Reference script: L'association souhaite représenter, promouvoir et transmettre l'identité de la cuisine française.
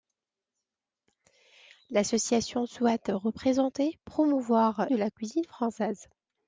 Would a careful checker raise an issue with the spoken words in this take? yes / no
yes